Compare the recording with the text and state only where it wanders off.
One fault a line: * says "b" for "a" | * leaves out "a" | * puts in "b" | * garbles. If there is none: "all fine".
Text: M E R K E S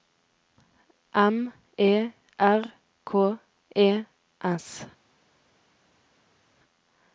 all fine